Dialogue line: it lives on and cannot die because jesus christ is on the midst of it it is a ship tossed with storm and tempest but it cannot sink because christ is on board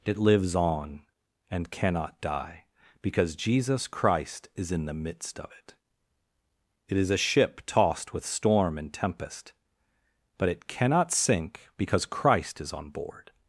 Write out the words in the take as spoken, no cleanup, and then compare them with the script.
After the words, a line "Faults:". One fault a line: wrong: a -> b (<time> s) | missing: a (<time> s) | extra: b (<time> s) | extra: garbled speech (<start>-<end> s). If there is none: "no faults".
it lives on and cannot die because jesus christ is in the midst of it it is a ship tossed with storm and tempest but it cannot sink because christ is on board
Faults:
wrong: on -> in (4.7 s)